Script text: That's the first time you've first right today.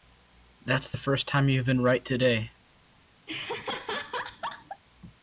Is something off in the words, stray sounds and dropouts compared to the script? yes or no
yes